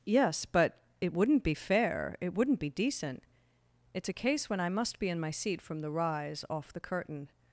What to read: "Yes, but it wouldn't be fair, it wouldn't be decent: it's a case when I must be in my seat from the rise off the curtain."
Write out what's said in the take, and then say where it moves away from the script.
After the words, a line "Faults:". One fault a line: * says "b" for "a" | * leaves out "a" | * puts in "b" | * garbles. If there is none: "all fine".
"Yes, but it wouldn't be fair, it wouldn't be decent: it's a case when I must be in my seat from the rise off the curtain."
Faults:
all fine